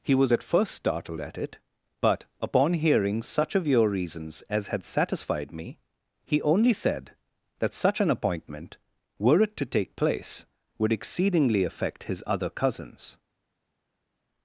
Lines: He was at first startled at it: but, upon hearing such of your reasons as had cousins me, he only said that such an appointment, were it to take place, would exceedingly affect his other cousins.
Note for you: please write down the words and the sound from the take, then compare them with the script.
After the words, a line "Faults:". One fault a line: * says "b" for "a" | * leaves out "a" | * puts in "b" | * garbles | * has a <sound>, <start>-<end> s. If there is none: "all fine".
He was at first startled at it: but, upon hearing such of your reasons as had satisfied me, he only said that such an appointment, were it to take place, would exceedingly affect his other cousins.
Faults:
* says "satisfied" for "cousins"